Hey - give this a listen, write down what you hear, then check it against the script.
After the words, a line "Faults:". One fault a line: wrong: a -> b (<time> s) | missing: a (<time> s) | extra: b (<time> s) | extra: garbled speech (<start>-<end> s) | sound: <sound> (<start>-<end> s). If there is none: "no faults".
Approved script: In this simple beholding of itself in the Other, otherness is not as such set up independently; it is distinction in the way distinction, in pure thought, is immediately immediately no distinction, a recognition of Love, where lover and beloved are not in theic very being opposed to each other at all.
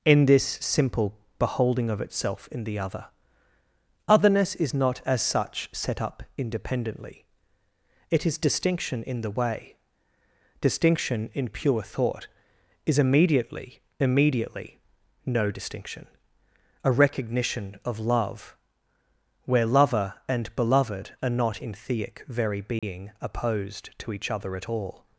In this simple beholding of itself in the Other, otherness is not as such set up independently; it is distinction in the way distinction, in pure thought, is immediately immediately no distinction, a recognition of Love, where lover and beloved are not in theic very being opposed to each other at all.
Faults:
sound: dropout (22.8-22.8 s)